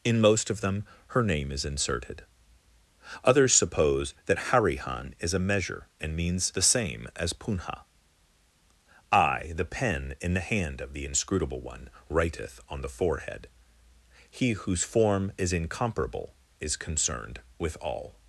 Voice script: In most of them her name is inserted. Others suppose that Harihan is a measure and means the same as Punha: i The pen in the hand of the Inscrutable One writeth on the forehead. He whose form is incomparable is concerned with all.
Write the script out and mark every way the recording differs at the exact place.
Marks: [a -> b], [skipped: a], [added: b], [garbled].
In most of them her name is inserted. Others suppose that Harihan is a measure and means the same as Punha: i The pen in the hand of the Inscrutable One writeth on the forehead. He whose form is incomparable is concerned with all.